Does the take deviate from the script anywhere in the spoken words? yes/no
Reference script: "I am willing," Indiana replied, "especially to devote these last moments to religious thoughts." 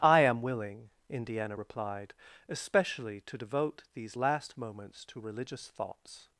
no